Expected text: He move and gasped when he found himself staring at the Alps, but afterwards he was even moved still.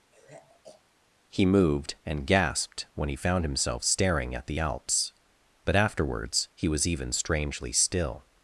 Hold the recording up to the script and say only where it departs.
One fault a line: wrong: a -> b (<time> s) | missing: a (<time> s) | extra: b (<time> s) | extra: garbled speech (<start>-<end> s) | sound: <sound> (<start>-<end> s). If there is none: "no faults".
sound: sigh (0.1-0.8 s)
wrong: move -> moved (1.4 s)
wrong: moved -> strangely (7.1 s)